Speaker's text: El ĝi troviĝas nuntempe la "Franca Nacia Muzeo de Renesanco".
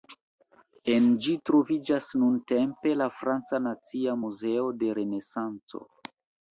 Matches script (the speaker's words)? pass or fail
fail